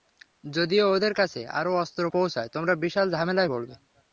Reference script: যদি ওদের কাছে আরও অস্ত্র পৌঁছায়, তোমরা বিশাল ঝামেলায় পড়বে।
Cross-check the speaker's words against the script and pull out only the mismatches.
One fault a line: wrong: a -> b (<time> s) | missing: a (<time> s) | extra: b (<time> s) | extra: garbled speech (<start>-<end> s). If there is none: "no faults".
no faults